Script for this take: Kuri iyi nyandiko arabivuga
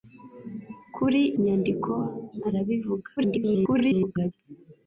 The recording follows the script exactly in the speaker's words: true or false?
false